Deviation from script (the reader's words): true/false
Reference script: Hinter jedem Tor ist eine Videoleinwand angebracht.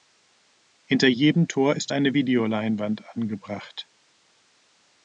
false